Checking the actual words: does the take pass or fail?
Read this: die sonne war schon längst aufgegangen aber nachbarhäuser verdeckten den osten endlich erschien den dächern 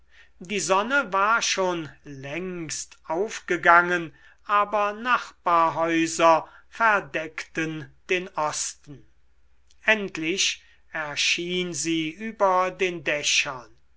fail